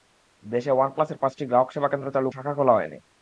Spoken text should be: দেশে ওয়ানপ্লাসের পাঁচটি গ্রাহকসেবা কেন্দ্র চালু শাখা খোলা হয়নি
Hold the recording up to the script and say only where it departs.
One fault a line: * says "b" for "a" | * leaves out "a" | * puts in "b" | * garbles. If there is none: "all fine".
all fine